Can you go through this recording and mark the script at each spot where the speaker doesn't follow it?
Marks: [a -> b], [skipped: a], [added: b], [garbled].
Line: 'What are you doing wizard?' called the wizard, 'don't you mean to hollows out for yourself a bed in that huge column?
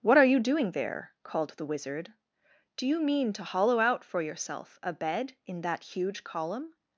'What are you doing [wizard?' -> there] called the wizard, ['don't -> do] you mean to [hollows -> hollow] out for yourself a bed in that huge column?